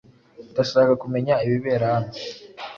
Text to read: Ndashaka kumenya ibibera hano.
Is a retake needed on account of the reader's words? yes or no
no